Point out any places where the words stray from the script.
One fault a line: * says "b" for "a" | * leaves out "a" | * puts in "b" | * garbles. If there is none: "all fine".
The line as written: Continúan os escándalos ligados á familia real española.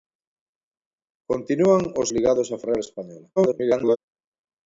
* leaves out "escándalos"
* leaves out "familia"
* garbles